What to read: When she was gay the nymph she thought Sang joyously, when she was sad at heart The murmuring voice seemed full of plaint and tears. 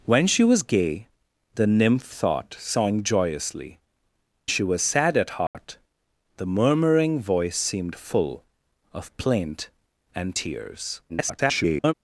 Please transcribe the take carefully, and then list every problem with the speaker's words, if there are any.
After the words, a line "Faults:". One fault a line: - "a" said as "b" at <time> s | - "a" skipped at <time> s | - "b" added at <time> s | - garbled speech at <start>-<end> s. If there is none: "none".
When she was gay the nymph thought Sang joyously, she was sad at heart The murmuring voice seemed full of plaint and tears. [garbled]
Faults:
- "she" skipped at 2.1 s
- "when" skipped at 3.8 s
- garbled speech at 11.1-11.9 s